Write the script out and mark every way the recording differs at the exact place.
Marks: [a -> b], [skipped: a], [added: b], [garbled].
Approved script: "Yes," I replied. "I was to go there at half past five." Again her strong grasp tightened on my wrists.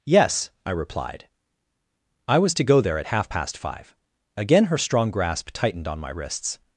"Yes," I replied. "I was to go there at half past five." Again her strong grasp tightened on my wrists.